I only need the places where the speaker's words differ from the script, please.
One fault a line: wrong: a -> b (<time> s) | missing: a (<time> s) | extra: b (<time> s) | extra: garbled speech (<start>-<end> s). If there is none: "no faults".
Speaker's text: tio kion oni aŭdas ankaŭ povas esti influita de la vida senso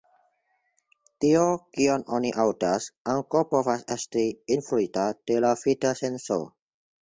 no faults